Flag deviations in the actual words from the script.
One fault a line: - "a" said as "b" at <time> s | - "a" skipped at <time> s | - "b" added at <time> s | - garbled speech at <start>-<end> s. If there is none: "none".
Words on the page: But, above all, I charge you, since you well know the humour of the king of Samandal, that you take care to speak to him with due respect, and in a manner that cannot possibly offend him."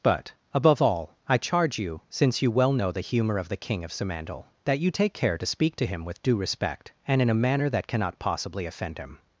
none